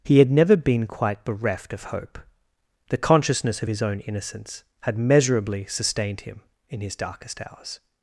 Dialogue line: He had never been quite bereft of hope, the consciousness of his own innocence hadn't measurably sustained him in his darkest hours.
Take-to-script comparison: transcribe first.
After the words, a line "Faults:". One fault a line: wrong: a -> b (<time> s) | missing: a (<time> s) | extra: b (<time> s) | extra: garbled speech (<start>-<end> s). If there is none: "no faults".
He had never been quite bereft of hope, the consciousness of his own innocence had measurably sustained him in his darkest hours.
Faults:
wrong: hadn't -> had (4.8 s)